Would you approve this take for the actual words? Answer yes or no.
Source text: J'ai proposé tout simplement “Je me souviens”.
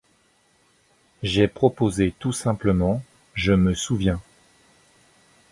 yes